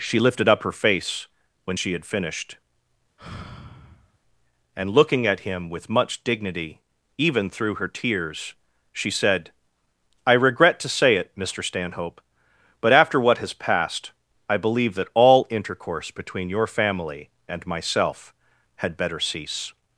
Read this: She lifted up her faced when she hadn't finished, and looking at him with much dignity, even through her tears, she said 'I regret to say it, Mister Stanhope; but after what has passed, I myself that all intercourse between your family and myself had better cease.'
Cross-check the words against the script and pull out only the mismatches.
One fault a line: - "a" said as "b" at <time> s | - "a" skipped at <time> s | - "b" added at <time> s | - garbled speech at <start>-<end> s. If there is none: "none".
- "faced" said as "face" at 0.7 s
- "hadn't" said as "had" at 1.9 s
- "myself" said as "believe" at 14.6 s